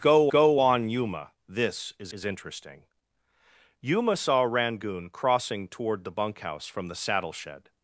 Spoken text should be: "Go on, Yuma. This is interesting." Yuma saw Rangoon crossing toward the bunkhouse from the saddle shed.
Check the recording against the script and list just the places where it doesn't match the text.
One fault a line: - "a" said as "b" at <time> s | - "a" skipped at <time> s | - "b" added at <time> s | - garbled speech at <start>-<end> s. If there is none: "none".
- "go" added at 0.3 s
- "is" added at 2.1 s